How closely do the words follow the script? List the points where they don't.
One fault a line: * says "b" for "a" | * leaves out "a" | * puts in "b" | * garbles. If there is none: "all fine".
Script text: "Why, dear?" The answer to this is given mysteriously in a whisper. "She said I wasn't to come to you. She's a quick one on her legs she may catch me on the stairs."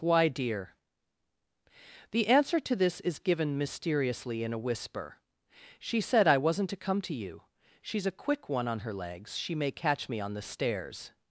all fine